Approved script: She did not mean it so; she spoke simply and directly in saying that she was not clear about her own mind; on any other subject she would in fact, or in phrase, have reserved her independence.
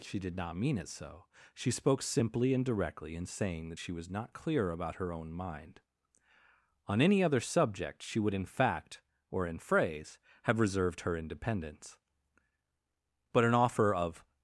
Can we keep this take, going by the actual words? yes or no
no